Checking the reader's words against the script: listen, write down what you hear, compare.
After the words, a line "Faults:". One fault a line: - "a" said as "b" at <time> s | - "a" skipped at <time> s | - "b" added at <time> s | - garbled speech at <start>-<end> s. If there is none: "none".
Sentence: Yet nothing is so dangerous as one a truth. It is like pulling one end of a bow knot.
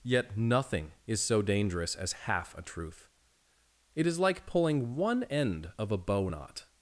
Yet nothing is so dangerous as half a truth. It is like pulling one end of a bow knot.
Faults:
- "one" said as "half" at 2.1 s